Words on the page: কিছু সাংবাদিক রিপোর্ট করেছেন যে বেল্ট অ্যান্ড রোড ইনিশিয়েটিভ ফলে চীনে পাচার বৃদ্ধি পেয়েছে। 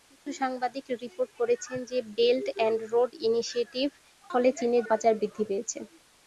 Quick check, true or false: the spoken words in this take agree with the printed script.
true